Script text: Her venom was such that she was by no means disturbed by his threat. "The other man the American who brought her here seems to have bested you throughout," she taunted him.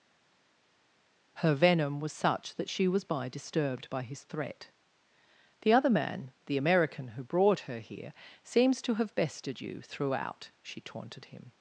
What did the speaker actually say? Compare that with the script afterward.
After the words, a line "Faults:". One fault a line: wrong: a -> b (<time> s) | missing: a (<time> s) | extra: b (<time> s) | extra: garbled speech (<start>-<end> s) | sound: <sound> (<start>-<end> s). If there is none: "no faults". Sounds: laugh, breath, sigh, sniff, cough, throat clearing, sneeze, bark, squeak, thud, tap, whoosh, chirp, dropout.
Her venom was such that she was by disturbed by his threat. "The other man the American who brought her here seems to have bested you throughout," she taunted him.
Faults:
missing: no means (3.3 s)